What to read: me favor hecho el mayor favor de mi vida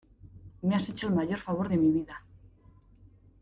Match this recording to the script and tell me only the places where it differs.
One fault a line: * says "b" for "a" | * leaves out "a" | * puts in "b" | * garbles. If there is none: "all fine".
* says "has" for "favor"